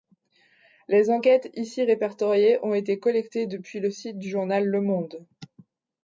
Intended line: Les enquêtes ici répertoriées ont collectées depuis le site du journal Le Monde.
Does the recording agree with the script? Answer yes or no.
no